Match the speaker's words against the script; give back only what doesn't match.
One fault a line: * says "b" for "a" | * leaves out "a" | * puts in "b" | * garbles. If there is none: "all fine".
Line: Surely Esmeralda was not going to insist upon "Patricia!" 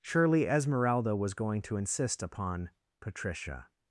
* leaves out "not"